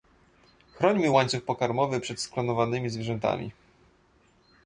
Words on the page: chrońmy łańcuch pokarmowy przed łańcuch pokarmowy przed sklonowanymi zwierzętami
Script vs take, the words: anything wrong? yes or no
yes